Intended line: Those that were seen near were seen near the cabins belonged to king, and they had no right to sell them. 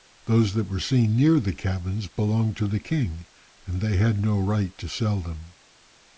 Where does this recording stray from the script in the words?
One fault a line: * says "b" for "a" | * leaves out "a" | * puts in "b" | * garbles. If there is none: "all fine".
* leaves out "were seen near"
* puts in "the"